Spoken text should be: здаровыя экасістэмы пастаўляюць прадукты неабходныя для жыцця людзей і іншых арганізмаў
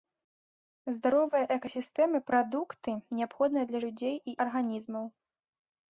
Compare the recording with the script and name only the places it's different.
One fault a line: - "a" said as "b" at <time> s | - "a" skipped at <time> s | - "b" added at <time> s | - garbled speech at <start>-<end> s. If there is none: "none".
- "пастаўляюць" skipped at 2.2 s
- "жыцця" skipped at 3.8 s
- "іншых" skipped at 4.3 s